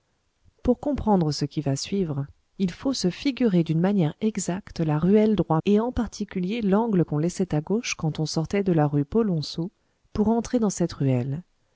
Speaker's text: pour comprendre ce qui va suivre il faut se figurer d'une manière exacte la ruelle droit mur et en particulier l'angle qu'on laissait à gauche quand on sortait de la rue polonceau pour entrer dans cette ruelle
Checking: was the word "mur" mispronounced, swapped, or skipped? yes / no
yes